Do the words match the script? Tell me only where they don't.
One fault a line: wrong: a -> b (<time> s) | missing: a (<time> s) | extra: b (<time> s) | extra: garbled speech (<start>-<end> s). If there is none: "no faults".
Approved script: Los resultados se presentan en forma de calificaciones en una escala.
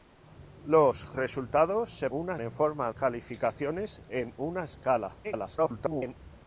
wrong: presentan -> una (2.1 s)
missing: de (2.9 s)
extra: garbled speech (5.2-6.2 s)